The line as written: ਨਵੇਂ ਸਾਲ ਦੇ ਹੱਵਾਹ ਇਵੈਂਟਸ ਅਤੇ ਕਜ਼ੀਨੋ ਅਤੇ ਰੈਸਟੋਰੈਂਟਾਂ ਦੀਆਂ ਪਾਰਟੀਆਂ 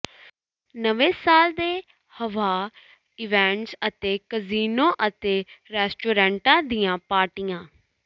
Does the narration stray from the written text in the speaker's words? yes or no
no